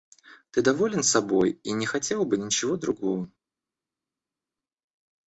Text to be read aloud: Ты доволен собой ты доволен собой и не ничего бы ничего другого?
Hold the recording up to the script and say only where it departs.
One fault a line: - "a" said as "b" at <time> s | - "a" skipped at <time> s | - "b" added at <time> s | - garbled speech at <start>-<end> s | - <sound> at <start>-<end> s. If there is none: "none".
- "ты доволен собой" skipped at 1.6 s
- "ничего" said as "хотел" at 1.9 s